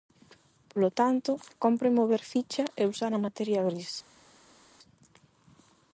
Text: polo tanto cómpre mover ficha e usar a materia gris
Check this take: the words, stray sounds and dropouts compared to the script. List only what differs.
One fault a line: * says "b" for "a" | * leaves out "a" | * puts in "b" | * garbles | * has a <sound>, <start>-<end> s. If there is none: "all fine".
all fine